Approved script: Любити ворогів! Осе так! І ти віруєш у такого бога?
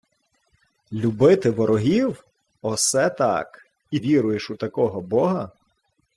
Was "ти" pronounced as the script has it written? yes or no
no